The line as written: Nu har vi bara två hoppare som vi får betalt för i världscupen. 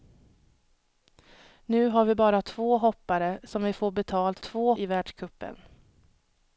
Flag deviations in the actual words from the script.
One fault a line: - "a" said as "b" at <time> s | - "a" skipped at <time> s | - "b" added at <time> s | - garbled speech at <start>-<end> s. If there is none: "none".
- "för" said as "två" at 4.4 s